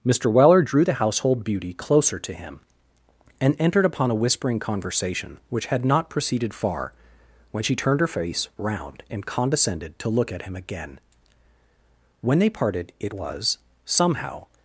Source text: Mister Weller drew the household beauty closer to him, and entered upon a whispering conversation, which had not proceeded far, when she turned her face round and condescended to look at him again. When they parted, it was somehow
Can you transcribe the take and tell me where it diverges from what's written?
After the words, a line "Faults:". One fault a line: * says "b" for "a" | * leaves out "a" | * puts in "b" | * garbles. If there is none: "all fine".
Mister Weller drew the household beauty closer to him, and entered upon a whispering conversation, which had not proceeded far, when she turned her face round and condescended to look at him again. When they parted, it was somehow
Faults:
all fine